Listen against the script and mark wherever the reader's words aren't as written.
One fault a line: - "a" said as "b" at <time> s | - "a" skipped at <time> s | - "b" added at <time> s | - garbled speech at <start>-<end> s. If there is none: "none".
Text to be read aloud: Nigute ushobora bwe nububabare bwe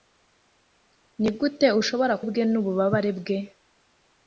none